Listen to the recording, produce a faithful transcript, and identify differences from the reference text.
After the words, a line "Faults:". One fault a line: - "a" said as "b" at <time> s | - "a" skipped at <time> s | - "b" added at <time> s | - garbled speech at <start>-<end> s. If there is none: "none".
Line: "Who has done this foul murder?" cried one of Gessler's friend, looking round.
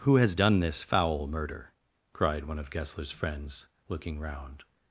"Who has done this foul murder?" cried one of Gessler's friends, looking round.
Faults:
- "friend" said as "friends" at 3.1 s